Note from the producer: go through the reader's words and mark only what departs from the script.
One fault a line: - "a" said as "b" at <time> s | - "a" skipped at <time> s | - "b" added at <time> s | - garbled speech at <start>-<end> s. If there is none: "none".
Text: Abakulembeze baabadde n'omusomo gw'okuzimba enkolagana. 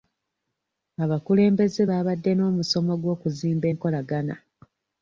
none